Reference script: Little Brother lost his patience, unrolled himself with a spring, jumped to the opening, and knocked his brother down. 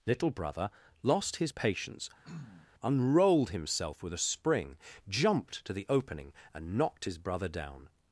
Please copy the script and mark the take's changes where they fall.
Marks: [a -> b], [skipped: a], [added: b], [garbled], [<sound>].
Little Brother lost his patience, [throat clearing] unrolled himself with a spring, jumped to the opening, and knocked his brother down.